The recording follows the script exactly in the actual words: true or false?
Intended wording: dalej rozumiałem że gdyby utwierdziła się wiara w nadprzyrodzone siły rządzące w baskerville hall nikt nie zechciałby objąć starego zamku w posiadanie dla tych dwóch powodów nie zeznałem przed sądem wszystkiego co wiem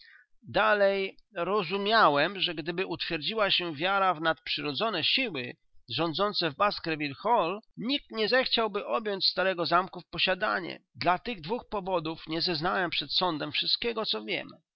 true